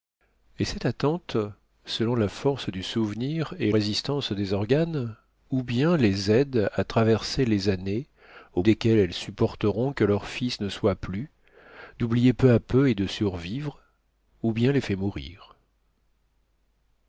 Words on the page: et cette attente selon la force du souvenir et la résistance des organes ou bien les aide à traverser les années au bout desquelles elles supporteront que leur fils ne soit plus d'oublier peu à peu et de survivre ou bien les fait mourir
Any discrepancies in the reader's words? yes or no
yes